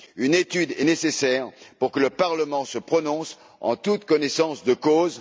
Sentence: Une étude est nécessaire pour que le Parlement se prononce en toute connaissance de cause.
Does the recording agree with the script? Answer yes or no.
yes